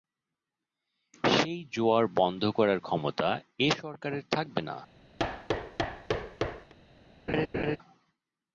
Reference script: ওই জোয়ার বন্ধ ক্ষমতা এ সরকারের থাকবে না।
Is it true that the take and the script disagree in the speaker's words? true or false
true